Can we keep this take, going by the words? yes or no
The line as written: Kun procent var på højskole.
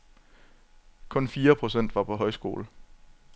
no